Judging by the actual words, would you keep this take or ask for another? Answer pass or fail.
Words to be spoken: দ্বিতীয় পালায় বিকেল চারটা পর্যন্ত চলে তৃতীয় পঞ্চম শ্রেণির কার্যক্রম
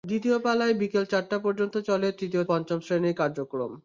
pass